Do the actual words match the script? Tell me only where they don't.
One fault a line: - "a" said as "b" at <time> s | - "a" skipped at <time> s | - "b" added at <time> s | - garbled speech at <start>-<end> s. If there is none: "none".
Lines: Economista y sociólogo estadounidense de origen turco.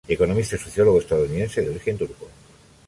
none